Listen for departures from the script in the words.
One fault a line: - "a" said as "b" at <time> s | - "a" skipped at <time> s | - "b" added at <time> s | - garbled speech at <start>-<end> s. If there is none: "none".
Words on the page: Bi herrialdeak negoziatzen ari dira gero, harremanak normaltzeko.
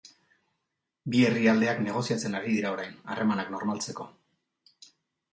- "gero" said as "orain" at 2.8 s